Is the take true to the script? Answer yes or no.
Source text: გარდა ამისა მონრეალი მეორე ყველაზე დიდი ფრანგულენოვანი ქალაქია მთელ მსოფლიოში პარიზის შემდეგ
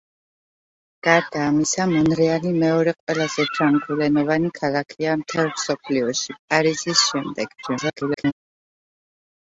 no